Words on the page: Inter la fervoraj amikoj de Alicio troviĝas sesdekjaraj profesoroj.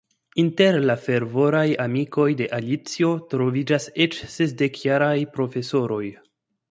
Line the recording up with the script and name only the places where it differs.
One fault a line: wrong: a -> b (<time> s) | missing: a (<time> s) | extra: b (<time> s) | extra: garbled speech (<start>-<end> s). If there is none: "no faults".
extra: eĉ (4.1 s)